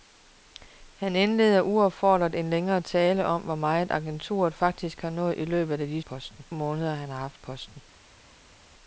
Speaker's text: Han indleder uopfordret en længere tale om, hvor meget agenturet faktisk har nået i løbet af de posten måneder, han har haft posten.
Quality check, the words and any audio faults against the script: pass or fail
pass